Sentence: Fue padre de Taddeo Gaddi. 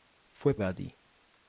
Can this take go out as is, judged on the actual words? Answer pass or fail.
fail